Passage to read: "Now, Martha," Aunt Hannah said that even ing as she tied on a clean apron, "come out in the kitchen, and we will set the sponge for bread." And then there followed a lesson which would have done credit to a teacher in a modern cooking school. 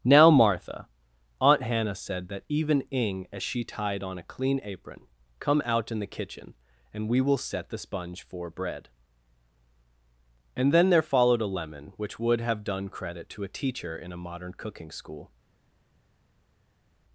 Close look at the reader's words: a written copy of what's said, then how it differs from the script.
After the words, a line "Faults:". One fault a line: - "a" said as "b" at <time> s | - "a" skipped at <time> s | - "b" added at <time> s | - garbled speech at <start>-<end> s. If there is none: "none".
"Now, Martha," Aunt Hannah said that even ing as she tied on a clean apron, "come out in the kitchen, and we will set the sponge for bread." And then there followed a lemon which would have done credit to a teacher in a modern cooking school.
Faults:
- "lesson" said as "lemon" at 11.5 s